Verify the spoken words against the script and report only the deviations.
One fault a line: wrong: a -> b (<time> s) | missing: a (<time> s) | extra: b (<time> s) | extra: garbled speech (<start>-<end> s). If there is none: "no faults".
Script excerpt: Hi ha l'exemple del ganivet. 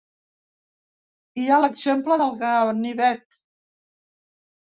no faults